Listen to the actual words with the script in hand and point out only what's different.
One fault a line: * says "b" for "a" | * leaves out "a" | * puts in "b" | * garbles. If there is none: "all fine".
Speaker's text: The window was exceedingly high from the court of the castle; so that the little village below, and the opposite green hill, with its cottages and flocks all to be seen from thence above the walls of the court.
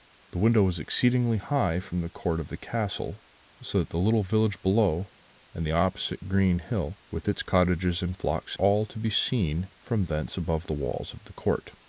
all fine